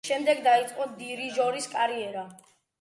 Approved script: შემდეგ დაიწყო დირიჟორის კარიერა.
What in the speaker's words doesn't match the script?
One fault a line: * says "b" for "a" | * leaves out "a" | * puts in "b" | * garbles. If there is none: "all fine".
all fine